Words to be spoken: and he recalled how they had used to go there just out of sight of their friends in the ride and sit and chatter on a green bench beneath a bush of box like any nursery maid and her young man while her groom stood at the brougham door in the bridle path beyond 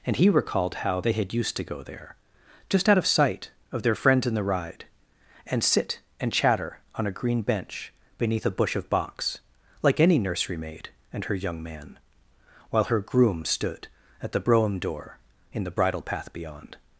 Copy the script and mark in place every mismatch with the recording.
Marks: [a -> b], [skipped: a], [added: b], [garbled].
and he recalled how they had used to go there just out of sight of their friends in the ride and sit and chatter on a green bench beneath a bush of box like any nursery maid and her young man while her groom stood at the brougham door in the bridle path beyond